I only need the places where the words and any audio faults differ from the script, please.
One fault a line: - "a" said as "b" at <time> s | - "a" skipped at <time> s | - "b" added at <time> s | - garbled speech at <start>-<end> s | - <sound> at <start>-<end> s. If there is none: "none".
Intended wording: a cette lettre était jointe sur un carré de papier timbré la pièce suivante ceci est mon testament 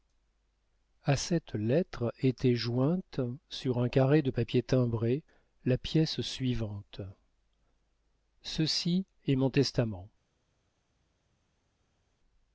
none